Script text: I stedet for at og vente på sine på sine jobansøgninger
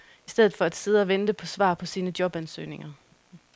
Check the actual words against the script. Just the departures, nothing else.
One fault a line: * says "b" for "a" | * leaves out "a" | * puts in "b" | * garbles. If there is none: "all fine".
* puts in "sidde"
* says "svar" for "sine"